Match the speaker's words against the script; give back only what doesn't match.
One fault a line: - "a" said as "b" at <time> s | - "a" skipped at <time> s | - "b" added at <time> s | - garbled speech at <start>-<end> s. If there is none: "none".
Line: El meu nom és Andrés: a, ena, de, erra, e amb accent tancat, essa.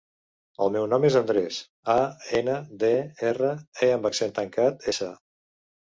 none